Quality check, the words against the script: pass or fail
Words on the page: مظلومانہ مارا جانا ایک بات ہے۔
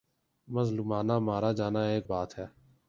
pass